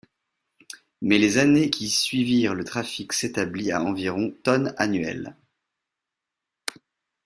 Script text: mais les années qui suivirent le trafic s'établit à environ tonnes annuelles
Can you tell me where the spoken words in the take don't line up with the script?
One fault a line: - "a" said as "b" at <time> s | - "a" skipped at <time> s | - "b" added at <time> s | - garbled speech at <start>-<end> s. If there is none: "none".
none